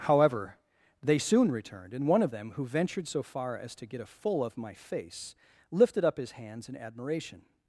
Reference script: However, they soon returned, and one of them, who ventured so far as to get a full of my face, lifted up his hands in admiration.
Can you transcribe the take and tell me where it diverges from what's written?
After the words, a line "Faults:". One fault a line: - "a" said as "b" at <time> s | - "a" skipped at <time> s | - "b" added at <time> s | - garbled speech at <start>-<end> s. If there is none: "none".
However, they soon returned, and one of them, who ventured so far as to get a full of my face, lifted up his hands in admiration.
Faults:
none